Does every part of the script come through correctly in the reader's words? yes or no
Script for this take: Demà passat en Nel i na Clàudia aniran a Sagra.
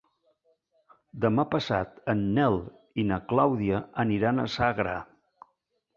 yes